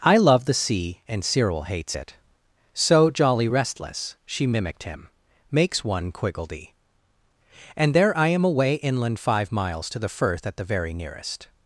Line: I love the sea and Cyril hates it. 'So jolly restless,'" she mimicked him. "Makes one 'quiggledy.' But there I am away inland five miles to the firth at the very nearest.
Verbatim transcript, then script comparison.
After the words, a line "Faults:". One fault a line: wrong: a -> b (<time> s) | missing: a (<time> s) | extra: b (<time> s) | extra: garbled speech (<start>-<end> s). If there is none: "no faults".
I love the sea and Cyril hates it. 'So jolly restless,'" she mimicked him. "Makes one 'quiggledy.' And there I am away inland five miles to the firth at the very nearest.
Faults:
wrong: But -> And (7.7 s)